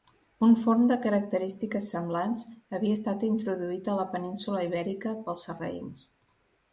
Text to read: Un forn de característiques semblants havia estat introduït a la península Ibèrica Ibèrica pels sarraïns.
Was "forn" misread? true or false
false